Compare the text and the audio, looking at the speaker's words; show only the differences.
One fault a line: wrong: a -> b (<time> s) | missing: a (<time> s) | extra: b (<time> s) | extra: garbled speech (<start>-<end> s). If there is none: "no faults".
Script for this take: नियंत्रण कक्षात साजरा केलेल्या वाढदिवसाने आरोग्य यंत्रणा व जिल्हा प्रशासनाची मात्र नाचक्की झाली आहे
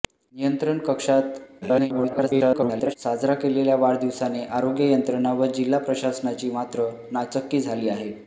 extra: garbled speech (1.6-2.9 s)